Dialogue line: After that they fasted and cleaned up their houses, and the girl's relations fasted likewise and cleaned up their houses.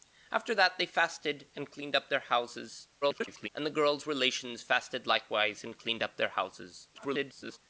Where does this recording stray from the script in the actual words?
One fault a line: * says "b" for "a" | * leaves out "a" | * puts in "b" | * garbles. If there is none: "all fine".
* garbles
* garbles